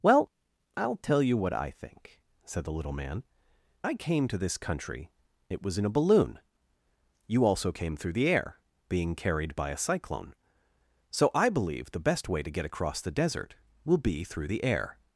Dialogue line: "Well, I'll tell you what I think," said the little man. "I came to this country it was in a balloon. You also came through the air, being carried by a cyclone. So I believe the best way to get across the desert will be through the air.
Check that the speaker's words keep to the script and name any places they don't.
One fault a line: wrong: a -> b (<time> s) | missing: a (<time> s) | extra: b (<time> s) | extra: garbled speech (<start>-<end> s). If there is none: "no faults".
no faults